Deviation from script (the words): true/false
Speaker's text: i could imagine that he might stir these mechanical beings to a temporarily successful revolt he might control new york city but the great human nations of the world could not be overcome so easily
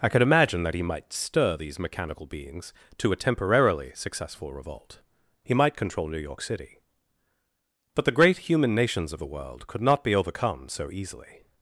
false